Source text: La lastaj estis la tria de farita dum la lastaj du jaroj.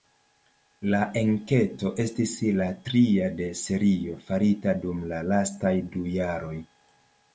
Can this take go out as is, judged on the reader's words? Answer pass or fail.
fail